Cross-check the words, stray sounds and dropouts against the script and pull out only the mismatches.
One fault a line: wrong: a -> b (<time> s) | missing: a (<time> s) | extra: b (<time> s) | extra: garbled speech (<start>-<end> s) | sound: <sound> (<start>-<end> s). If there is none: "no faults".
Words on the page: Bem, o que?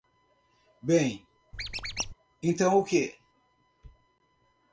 sound: squeak (1.5-2.1 s)
extra: então (2.4 s)